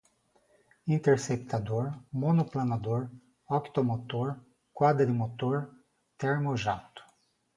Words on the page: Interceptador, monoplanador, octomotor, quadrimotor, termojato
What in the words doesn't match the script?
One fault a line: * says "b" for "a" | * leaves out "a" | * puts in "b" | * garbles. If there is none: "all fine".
all fine